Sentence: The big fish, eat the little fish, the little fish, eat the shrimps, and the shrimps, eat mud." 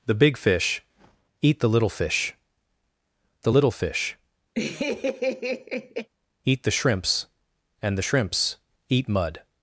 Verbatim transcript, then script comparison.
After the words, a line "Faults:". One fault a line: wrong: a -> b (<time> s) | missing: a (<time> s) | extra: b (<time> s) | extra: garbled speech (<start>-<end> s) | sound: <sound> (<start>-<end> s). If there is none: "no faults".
The big fish, eat the little fish, the little fish, eat the shrimps, and the shrimps, eat mud."
Faults:
sound: laugh (4.5-6.1 s)